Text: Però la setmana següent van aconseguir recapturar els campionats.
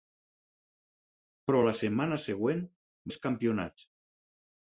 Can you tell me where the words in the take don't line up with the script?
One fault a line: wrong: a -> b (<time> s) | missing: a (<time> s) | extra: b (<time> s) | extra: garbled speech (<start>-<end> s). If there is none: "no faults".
missing: van aconseguir recapturar (2.6 s)